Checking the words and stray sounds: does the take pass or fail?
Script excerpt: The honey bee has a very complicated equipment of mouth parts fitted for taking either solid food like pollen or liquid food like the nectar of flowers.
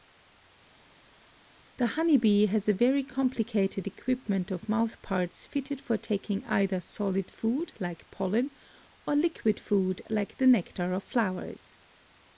pass